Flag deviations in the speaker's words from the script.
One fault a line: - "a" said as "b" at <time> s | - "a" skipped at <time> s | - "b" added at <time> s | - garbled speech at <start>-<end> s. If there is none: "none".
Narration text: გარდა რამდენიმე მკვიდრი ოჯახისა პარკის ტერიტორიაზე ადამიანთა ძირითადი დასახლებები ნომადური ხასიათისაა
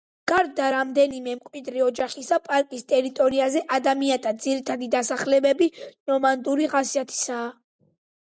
none